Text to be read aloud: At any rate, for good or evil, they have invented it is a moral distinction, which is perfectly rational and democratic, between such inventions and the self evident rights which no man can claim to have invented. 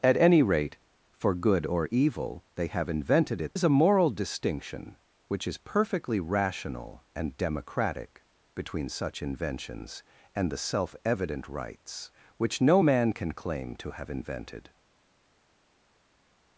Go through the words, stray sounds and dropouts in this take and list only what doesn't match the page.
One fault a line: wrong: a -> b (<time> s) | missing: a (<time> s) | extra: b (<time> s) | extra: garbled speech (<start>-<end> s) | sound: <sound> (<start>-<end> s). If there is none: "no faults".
no faults